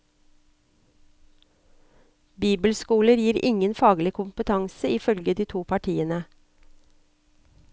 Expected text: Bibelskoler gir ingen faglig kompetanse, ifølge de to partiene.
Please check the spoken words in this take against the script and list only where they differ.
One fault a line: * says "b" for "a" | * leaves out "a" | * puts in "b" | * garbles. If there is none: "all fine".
all fine